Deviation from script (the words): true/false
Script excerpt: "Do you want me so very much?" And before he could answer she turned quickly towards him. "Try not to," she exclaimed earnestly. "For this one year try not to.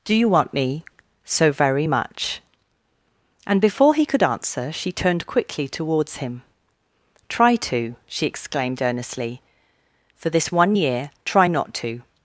true